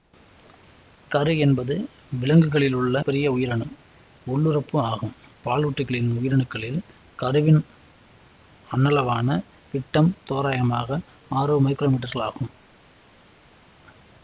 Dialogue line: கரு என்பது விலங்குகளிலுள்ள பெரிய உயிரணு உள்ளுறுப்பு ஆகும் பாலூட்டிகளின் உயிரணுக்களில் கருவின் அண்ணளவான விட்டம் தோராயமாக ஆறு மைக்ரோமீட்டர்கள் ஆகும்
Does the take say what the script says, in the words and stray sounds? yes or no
yes